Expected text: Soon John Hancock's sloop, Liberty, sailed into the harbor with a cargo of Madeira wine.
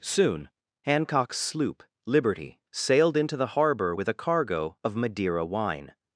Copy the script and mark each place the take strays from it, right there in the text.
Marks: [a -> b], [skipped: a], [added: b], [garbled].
Soon [skipped: John] Hancock's sloop, Liberty, sailed into the harbor with a cargo of Madeira wine.